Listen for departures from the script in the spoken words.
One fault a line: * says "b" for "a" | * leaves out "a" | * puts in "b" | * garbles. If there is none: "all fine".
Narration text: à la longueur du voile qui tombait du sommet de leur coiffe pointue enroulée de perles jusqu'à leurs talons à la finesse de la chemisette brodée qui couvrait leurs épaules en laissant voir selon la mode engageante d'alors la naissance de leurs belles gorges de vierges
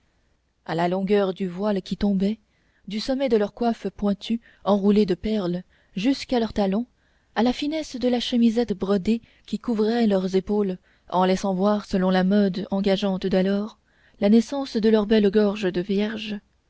all fine